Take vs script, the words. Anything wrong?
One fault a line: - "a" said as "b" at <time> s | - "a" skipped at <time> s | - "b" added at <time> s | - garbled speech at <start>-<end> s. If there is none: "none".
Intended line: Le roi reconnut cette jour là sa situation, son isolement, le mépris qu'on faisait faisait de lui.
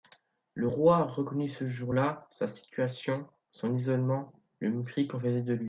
- "cette" said as "ce" at 1.5 s
- "faisait" skipped at 5.4 s